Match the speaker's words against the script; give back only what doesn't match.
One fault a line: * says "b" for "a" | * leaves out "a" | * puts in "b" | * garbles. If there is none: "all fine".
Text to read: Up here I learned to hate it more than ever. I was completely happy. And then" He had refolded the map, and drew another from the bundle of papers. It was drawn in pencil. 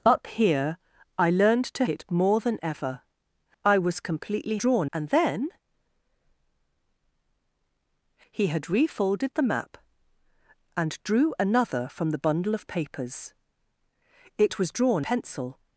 * leaves out "hate"
* says "drawn" for "happy"
* leaves out "in"